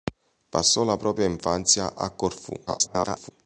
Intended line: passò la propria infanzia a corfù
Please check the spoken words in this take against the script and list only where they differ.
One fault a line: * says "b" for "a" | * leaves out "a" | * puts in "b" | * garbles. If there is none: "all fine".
* garbles